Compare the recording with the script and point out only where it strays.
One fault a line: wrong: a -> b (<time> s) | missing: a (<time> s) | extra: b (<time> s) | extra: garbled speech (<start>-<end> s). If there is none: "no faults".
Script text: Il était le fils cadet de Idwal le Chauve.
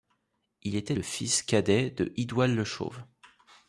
no faults